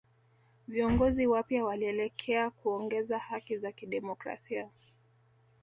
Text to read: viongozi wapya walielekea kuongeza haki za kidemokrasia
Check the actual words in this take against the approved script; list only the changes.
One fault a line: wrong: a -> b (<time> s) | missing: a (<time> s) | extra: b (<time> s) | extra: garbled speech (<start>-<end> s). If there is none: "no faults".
no faults